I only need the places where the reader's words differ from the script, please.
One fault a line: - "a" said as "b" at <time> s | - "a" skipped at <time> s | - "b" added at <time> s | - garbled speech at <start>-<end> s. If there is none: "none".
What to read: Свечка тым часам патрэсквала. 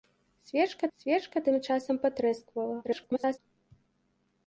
- "свечка" added at 1.0 s
- garbled speech at 2.8-3.4 s